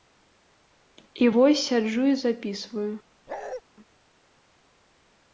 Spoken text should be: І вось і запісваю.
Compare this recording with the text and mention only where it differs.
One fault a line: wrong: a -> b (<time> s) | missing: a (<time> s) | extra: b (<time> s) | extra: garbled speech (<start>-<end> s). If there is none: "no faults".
extra: сяджу (1.7 s)